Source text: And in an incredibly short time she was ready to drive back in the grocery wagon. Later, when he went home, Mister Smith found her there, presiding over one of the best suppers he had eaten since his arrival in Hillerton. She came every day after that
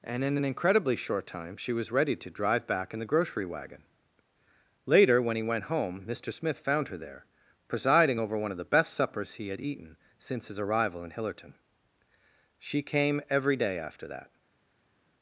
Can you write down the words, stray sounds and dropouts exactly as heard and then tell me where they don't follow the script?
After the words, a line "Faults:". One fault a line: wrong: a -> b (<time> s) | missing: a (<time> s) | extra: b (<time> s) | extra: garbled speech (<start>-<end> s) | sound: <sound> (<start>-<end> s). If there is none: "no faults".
And in an incredibly short time she was ready to drive back in the grocery wagon. Later, when he went home, Mister Smith found her there, presiding over one of the best suppers he had eaten since his arrival in Hillerton. She came every day after that
Faults:
no faults